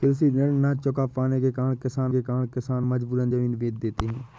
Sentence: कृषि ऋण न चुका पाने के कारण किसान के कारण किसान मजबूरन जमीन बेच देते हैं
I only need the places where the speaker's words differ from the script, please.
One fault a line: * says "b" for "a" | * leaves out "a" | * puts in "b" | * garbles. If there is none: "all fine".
all fine